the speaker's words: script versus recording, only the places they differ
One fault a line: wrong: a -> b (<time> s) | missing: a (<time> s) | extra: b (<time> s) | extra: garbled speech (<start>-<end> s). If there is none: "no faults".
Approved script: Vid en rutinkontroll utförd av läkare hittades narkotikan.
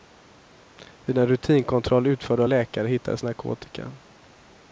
no faults